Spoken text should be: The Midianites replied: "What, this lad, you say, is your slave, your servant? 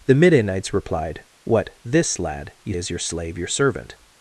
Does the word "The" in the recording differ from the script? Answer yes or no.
no